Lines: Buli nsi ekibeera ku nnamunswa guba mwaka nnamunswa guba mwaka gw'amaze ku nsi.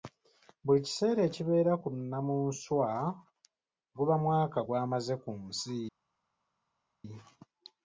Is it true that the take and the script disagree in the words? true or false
true